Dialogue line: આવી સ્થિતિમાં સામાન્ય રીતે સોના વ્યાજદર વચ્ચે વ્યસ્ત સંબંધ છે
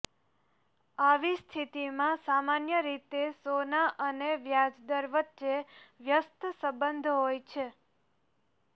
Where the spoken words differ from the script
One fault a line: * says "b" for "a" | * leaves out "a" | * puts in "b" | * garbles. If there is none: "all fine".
* puts in "અને"
* puts in "હોય"